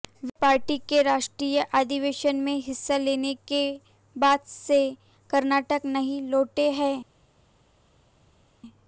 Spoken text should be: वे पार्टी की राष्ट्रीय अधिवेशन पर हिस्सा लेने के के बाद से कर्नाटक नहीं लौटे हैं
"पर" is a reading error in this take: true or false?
true